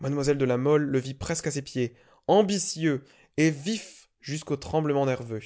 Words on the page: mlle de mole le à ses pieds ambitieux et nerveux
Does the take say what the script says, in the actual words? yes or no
no